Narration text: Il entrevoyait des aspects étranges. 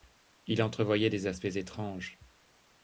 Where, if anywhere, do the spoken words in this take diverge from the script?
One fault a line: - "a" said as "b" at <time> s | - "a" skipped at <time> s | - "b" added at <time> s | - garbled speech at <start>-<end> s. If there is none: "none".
none